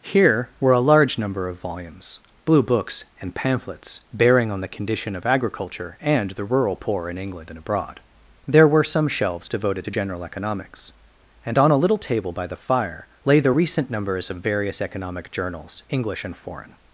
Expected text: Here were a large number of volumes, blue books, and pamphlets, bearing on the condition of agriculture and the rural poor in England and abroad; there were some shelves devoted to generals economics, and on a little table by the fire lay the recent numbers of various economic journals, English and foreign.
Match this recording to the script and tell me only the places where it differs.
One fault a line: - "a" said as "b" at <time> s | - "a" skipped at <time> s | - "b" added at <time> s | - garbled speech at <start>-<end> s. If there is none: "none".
- "generals" said as "general" at 9.9 s